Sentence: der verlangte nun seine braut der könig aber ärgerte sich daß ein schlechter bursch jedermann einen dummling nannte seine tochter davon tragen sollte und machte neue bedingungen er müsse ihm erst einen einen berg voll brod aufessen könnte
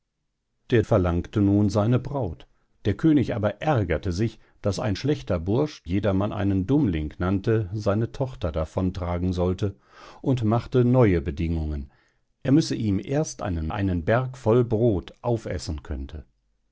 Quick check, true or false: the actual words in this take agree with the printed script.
true